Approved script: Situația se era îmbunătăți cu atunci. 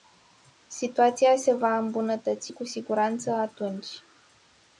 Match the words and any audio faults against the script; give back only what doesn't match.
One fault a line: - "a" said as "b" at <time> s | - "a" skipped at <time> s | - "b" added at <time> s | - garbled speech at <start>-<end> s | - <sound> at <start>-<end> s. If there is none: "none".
- "era" said as "va" at 1.5 s
- "siguranță" added at 2.6 s